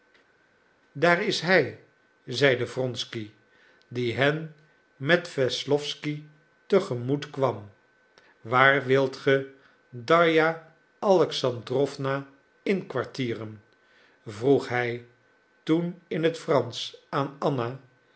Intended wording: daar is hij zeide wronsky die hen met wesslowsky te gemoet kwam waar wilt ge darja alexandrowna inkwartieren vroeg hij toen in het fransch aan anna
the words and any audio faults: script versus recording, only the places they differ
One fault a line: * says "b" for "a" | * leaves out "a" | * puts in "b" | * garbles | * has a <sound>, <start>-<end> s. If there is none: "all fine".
all fine